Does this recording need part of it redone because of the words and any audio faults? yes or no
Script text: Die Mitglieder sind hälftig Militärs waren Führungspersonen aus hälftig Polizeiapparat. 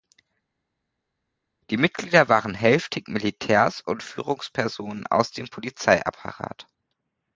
yes